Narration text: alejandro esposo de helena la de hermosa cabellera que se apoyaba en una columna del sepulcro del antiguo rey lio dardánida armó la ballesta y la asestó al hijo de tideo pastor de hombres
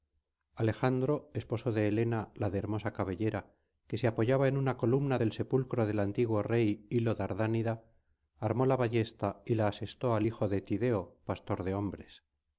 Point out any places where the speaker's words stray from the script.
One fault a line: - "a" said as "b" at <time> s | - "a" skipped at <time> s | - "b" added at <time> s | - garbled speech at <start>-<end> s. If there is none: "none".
none